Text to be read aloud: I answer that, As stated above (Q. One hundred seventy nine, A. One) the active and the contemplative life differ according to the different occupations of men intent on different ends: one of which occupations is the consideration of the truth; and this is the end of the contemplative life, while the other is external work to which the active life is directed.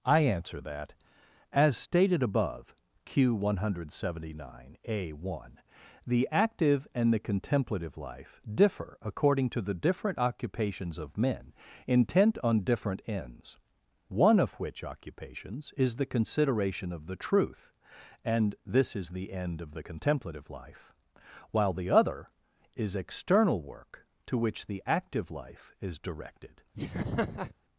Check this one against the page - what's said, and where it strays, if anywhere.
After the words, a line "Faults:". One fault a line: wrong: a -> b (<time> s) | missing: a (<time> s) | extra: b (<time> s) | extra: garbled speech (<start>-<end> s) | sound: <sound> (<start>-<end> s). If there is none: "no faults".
I answer that, As stated above (Q. One hundred seventy nine, A. One) the active and the contemplative life differ according to the different occupations of men intent on different ends: one of which occupations is the consideration of the truth; and this is the end of the contemplative life, while the other is external work to which the active life is directed.
Faults:
sound: laugh (26.7-27.5 s)